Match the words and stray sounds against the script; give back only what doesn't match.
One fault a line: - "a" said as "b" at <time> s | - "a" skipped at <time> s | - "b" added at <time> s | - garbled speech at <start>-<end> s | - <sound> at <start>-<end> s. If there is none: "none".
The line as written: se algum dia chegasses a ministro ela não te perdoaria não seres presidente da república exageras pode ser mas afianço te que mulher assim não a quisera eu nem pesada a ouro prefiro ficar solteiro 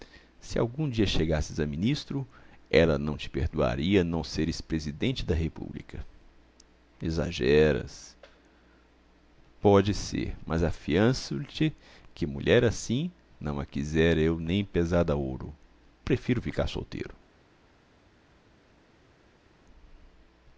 none